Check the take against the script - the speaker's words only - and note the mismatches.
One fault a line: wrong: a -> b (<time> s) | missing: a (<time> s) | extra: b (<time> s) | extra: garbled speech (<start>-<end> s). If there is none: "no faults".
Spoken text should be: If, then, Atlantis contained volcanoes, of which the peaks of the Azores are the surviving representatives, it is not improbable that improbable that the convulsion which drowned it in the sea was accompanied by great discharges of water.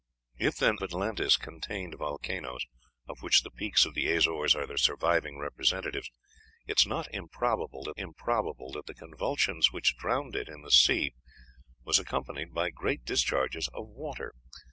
no faults